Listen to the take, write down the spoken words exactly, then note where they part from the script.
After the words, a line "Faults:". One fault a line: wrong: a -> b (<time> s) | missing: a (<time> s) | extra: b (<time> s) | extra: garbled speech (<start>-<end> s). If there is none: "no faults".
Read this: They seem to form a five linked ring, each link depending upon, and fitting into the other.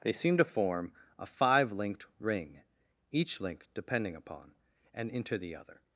They seem to form a five linked ring, each link depending upon, and into the other.
Faults:
missing: fitting (5.1 s)